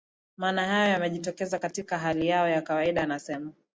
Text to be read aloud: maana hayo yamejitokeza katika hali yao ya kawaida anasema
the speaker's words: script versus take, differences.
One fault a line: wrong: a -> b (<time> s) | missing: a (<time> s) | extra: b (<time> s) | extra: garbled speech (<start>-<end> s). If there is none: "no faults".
no faults